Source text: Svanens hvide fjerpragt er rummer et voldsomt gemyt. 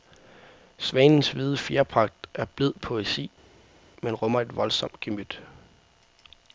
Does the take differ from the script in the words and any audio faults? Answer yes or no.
yes